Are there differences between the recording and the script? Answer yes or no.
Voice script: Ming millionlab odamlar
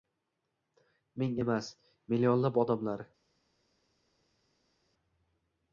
yes